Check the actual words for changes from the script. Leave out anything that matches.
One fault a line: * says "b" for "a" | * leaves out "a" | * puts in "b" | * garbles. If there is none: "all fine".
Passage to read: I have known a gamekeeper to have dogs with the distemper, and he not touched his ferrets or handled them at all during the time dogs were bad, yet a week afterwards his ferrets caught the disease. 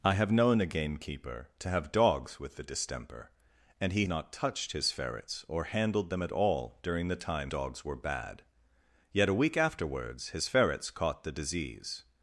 all fine